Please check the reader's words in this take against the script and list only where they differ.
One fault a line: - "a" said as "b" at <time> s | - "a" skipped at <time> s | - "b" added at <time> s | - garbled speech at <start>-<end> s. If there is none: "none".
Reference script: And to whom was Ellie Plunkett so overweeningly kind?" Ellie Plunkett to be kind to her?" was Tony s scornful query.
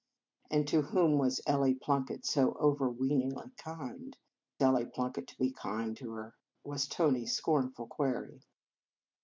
none